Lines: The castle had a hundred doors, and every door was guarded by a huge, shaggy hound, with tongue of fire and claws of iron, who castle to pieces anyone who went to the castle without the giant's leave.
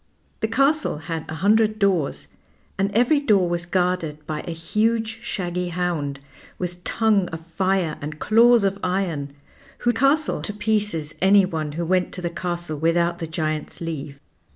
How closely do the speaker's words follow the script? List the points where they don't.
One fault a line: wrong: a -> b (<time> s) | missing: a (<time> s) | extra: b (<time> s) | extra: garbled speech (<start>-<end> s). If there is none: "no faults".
no faults